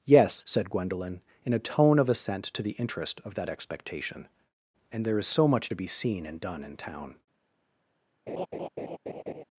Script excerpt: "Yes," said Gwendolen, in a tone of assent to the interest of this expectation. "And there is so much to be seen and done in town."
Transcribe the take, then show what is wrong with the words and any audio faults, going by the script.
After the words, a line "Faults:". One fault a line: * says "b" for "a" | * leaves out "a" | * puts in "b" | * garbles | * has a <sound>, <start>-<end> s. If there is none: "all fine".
"Yes," said Gwendolen, in a tone of assent to the interest of that expectation. "And there is so much to be seen and done in town."
Faults:
* says "that" for "this"
* has a laugh, 8.3-9.4 s